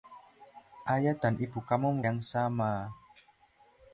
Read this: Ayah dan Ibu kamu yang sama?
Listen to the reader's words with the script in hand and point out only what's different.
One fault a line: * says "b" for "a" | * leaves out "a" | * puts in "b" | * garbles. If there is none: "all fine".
all fine